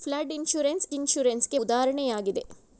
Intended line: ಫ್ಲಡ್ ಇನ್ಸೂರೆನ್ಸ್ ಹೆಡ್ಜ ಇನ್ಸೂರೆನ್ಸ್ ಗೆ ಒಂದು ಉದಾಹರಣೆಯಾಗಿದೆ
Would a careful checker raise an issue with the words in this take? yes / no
yes